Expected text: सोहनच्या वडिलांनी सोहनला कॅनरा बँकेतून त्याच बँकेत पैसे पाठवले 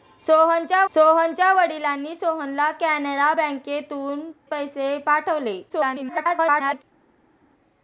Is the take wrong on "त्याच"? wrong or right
wrong